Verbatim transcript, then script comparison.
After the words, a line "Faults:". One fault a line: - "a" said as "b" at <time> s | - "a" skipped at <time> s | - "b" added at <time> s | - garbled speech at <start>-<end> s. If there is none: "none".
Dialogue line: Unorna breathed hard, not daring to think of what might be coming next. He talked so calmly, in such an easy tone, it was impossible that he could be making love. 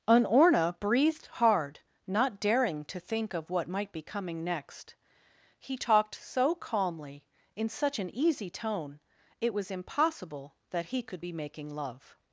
Unorna breathed hard, not daring to think of what might be coming next. He talked so calmly, in such an easy tone, it was impossible that he could be making love.
Faults:
none